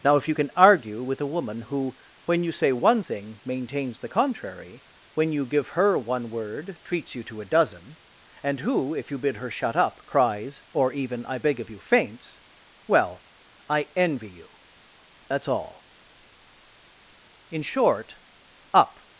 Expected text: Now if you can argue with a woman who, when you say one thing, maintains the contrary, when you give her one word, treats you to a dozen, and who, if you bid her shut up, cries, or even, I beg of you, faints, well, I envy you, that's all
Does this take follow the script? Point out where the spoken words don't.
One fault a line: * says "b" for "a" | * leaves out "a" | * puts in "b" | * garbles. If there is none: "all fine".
* puts in "In short up"